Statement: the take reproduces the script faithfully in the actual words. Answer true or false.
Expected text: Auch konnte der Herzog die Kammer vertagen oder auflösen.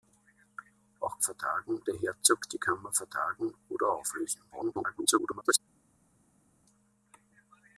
false